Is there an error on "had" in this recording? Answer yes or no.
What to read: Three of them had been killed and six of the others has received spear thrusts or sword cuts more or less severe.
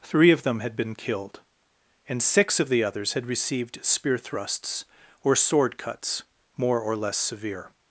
no